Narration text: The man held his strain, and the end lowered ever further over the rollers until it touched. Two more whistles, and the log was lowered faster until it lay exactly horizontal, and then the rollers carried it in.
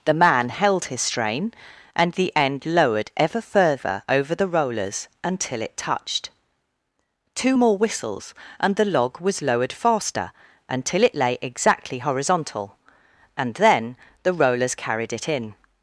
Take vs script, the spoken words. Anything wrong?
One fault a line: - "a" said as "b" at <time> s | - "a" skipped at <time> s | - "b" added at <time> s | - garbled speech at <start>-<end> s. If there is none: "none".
none